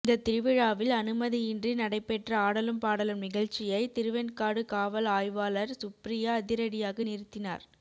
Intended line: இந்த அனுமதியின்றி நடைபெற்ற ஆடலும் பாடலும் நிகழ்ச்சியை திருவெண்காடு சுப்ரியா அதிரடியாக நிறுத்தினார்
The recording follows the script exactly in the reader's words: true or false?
false